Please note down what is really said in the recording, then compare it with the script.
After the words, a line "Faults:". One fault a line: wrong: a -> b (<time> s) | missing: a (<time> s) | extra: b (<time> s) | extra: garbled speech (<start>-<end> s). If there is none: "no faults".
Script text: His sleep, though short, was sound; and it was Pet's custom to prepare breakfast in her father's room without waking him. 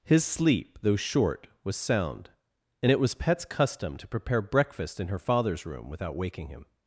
His sleep, though short, was sound; and it was Pet's custom to prepare breakfast in her father's room without waking him.
Faults:
no faults